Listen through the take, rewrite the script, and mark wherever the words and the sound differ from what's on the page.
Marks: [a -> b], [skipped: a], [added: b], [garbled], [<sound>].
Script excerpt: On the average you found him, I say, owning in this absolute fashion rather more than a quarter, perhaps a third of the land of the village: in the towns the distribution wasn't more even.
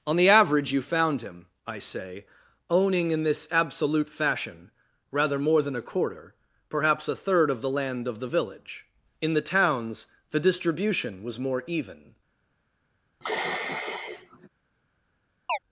On the average you found him, I say, owning in this absolute fashion rather more than a quarter, perhaps a third of the land of the village: in the towns the distribution [wasn't -> was] more even. [sigh] [chirp]